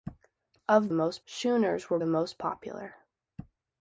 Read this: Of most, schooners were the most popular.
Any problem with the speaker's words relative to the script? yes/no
no